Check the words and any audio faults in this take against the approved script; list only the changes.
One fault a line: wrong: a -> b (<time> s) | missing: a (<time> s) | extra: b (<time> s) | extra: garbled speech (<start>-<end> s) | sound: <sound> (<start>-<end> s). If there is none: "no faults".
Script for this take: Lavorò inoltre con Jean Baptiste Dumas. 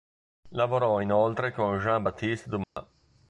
sound: dropout (2.6-2.8 s)